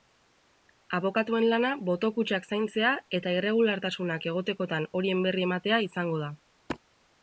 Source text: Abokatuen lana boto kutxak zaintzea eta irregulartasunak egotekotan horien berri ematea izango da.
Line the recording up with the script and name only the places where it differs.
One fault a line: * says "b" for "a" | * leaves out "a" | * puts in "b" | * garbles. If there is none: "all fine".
all fine